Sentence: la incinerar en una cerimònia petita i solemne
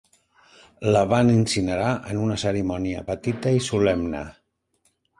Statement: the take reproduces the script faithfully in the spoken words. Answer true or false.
false